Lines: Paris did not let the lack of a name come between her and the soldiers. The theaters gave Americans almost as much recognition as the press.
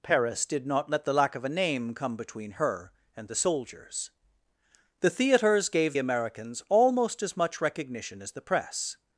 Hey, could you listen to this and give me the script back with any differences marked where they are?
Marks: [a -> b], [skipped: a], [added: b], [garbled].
Paris did not let the lack of a name come between her and the soldiers. The theaters gave Americans almost as much recognition as the press.